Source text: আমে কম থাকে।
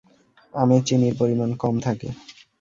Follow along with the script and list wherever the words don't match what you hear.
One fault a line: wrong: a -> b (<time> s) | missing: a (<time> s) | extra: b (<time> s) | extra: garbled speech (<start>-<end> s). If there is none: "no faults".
extra: চিনির পরিমাণ (0.9 s)